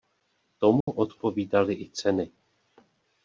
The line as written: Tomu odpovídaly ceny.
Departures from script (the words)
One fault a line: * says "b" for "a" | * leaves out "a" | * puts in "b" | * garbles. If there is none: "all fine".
* puts in "i"